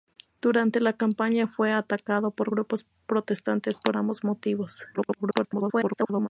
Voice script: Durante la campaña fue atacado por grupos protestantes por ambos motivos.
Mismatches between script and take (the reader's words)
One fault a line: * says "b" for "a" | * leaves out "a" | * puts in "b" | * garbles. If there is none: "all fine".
* garbles